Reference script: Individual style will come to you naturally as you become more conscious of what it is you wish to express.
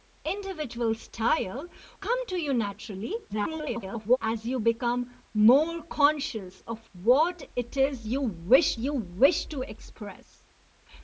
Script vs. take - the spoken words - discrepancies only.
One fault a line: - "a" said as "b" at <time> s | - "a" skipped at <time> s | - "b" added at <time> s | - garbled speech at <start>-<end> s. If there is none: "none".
- "will" skipped at 1.7 s
- garbled speech at 3.3-4.2 s
- "you wish" added at 8.8 s